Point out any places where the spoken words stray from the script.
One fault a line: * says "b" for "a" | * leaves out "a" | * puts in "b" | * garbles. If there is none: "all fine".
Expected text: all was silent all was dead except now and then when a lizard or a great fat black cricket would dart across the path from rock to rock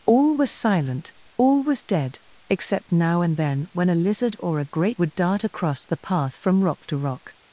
* leaves out "fat black cricket"